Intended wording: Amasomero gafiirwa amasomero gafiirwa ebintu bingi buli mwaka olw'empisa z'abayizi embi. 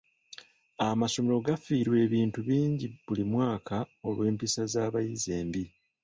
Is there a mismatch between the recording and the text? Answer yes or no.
yes